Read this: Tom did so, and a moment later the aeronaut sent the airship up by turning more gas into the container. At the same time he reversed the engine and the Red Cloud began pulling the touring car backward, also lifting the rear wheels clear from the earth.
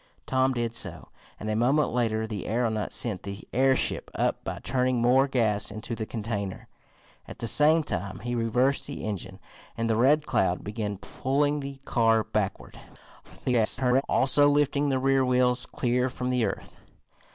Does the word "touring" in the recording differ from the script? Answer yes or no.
yes